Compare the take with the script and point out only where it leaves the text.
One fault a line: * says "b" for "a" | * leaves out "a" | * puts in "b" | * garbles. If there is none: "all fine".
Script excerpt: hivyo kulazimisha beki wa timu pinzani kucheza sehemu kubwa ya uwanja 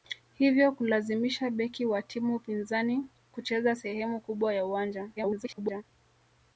* garbles